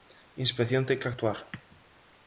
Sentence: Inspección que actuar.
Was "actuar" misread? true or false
false